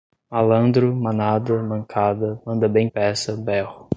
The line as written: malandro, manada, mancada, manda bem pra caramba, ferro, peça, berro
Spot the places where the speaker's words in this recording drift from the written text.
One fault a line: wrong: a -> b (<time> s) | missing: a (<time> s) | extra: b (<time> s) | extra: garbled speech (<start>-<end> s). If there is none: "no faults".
missing: pra caramba ferro (2.9 s)